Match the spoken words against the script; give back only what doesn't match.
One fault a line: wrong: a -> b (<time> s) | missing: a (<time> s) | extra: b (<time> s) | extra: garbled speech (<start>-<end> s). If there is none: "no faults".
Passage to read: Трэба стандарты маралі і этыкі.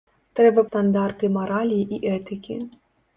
no faults